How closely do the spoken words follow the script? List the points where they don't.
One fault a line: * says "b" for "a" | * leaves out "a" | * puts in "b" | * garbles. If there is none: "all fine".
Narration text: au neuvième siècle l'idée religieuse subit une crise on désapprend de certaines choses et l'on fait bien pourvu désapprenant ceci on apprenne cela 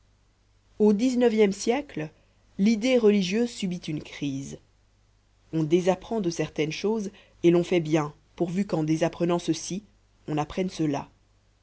* puts in "dix"
* puts in "qu'en"